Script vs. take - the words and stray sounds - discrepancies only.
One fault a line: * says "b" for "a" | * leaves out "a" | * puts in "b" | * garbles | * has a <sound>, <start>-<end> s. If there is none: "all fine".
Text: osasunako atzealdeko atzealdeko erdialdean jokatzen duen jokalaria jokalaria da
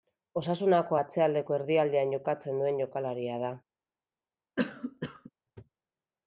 * leaves out "atzealdeko"
* leaves out "jokalaria"
* has a cough, 4.6-5.3 s